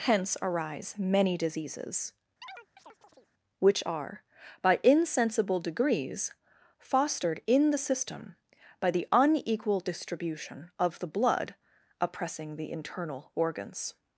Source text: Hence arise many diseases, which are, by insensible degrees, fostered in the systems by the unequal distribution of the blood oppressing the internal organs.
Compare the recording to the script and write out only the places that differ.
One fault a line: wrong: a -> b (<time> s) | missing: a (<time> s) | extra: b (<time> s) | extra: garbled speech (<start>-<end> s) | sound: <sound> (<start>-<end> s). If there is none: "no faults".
sound: chirp (2.4-3.3 s)
wrong: systems -> system (7.8 s)